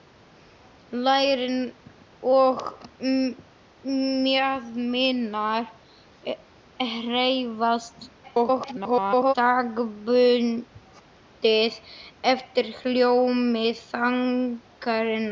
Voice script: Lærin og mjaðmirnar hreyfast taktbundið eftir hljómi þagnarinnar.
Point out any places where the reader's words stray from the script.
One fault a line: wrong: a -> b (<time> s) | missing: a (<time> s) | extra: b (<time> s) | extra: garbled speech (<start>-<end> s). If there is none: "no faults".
extra: garbled speech (8.2-9.3 s)